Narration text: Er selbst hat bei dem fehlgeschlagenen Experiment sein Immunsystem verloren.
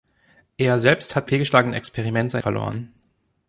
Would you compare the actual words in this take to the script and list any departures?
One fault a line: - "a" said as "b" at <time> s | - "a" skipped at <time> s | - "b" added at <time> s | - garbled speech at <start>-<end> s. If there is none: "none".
- "bei dem" skipped at 1.3 s
- "Immunsystem" skipped at 2.4 s